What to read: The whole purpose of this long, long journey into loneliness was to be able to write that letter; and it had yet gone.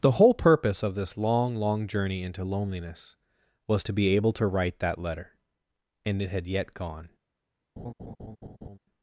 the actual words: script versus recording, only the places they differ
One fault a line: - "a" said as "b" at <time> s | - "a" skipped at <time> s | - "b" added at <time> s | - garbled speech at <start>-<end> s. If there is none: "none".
none